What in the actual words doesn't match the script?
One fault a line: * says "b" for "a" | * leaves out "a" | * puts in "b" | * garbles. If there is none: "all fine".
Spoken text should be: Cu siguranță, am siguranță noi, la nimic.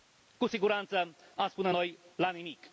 * says "spune" for "siguranță"